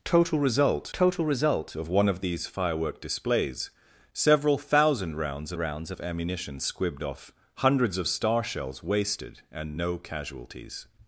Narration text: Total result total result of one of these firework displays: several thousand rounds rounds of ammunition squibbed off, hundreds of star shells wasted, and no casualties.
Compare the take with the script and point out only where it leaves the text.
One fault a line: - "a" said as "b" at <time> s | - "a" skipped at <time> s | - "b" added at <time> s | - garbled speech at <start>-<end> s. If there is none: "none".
none